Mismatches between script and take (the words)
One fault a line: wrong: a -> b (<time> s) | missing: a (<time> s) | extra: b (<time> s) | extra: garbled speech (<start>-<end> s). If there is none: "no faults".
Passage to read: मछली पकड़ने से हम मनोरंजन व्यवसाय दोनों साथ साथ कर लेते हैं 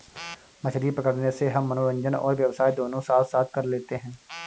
extra: और (2.1 s)